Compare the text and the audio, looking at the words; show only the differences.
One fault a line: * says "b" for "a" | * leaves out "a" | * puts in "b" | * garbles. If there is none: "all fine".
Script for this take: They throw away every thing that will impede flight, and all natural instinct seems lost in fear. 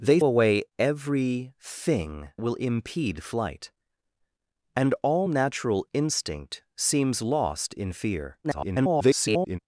* leaves out "throw"
* leaves out "that"
* garbles